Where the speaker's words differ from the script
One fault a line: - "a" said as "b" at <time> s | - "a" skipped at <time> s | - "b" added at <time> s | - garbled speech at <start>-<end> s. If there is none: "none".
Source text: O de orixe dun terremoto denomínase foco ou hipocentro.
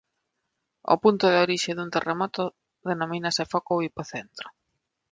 - "punto" added at 1.0 s